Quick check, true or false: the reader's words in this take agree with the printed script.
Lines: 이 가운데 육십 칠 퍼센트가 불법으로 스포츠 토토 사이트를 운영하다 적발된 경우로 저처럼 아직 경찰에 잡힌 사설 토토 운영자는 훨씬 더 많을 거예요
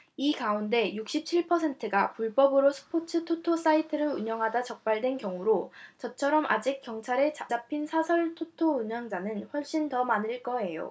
true